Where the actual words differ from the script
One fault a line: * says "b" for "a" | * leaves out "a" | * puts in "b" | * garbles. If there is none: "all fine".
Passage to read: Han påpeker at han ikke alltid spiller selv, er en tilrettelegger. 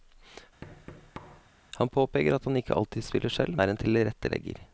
all fine